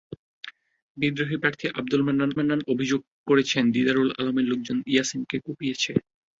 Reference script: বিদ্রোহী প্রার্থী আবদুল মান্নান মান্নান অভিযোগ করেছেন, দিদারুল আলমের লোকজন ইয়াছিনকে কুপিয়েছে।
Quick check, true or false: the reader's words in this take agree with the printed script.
true